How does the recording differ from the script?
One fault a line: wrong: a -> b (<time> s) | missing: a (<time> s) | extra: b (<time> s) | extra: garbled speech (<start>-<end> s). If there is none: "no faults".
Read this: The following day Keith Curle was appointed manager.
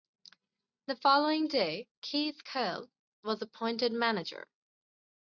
no faults